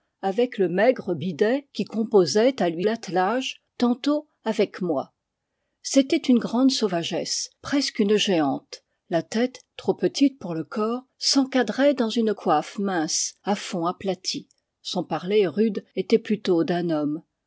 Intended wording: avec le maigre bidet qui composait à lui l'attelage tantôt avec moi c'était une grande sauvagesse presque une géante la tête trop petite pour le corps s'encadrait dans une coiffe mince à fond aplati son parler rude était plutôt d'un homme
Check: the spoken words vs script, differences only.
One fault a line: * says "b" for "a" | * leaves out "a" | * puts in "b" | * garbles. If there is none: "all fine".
all fine